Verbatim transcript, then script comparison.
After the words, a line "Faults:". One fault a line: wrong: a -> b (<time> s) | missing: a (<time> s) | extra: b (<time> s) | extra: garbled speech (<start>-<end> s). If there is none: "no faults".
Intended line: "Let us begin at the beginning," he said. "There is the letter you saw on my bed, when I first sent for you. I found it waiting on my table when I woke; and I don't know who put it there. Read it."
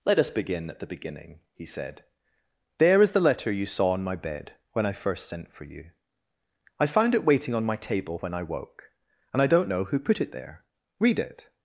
"Let us begin at the beginning," he said. "There is the letter you saw on my bed, when I first sent for you. I found it waiting on my table when I woke; and I don't know who put it there. Read it."
Faults:
no faults